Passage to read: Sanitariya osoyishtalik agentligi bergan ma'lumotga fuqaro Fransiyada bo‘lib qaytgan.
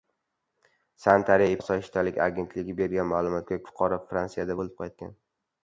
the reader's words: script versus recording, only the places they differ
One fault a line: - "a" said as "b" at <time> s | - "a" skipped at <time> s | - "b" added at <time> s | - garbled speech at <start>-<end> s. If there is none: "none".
none